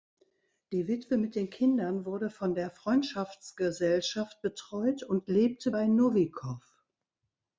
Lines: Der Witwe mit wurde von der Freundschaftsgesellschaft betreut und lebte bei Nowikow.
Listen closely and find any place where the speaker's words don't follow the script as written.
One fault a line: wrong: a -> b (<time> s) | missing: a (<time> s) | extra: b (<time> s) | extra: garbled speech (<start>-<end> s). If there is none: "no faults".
wrong: Der -> Die (0.7 s)
extra: den Kindern (1.4 s)